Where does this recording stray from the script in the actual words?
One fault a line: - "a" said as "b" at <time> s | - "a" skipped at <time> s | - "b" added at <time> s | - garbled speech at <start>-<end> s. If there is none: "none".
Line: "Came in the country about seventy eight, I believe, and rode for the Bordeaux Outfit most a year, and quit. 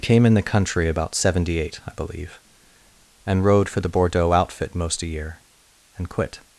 none